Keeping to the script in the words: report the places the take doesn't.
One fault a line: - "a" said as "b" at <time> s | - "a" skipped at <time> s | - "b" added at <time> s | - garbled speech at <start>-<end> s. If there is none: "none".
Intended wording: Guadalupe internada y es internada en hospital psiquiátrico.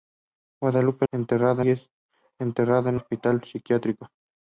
none